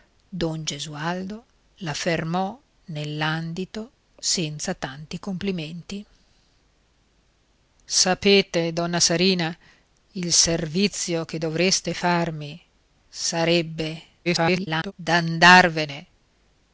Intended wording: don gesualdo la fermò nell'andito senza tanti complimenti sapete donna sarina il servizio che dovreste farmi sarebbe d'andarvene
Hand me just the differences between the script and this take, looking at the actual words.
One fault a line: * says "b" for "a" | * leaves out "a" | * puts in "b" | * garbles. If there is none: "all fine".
* garbles